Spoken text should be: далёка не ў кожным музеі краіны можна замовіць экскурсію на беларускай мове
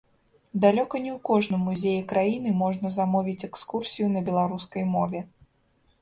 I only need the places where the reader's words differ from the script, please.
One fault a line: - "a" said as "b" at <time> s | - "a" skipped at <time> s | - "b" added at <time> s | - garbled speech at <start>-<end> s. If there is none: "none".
none